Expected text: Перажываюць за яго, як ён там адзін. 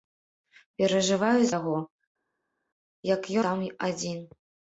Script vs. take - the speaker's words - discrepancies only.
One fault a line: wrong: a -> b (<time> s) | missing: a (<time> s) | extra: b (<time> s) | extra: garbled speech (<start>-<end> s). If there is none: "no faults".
missing: за (1.5 s)
missing: ён (3.2 s)